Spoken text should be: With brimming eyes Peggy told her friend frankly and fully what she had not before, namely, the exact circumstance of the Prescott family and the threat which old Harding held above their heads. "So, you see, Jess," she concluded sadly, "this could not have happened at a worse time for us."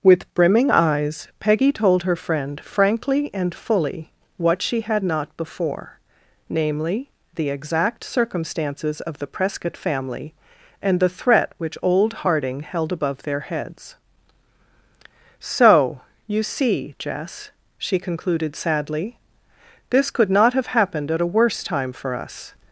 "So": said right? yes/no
yes